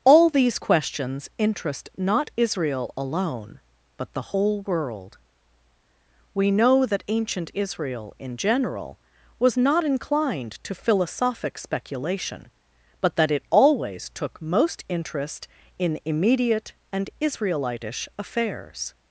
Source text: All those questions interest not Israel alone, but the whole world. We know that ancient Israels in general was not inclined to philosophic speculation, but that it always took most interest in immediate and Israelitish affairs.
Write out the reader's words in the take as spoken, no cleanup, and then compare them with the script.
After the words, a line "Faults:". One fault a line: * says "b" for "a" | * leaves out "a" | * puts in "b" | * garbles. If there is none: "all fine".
All these questions interest not Israel alone, but the whole world. We know that ancient Israel in general was not inclined to philosophic speculation, but that it always took most interest in immediate and Israelitish affairs.
Faults:
* says "these" for "those"
* says "Israel" for "Israels"